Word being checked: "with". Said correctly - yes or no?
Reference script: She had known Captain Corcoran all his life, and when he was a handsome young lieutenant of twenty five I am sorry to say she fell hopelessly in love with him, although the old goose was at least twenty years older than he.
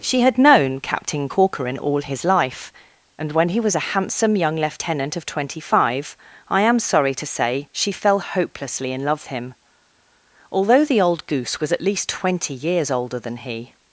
no